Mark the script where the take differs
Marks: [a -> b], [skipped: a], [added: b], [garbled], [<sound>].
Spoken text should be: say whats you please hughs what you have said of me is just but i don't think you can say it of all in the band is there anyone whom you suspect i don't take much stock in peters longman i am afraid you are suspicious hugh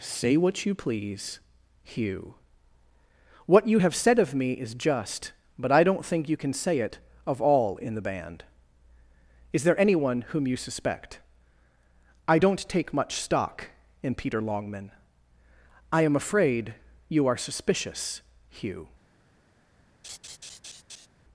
say [whats -> what] you please [hughs -> hugh] what you have said of me is just but i don't think you can say it of all in the band is there anyone whom you suspect i don't take much stock in [peters -> peter] longman i am afraid you are suspicious hugh [laugh]